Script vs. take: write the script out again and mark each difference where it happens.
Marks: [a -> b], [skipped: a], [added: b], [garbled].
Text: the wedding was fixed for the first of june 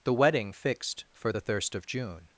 the wedding [skipped: was] fixed for the [first -> thirst] of june